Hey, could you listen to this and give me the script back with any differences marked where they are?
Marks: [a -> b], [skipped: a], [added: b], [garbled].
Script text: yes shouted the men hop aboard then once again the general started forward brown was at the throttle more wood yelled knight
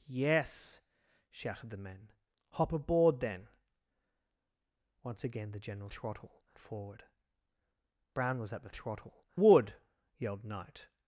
yes shouted the men hop aboard then once again the general [started -> throttle] forward brown was at the throttle [skipped: more] wood yelled knight